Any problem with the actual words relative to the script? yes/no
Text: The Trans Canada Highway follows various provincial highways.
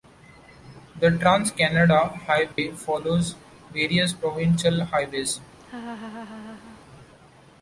no